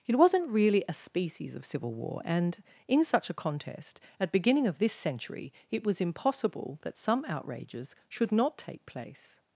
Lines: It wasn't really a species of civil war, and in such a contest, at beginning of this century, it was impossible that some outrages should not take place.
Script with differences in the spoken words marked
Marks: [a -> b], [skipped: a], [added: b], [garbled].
It wasn't really a species of civil war, and in such a contest, at beginning of this century, it was impossible that some outrages should not take place.